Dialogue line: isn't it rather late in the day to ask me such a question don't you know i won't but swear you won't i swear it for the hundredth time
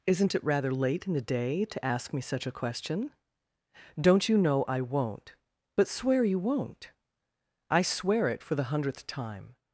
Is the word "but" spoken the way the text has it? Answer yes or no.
yes